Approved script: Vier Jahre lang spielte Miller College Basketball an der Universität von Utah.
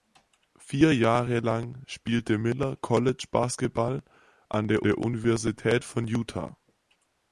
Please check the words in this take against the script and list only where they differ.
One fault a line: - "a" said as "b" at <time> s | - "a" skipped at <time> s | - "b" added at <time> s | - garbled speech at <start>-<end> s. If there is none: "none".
- "der" added at 4.8 s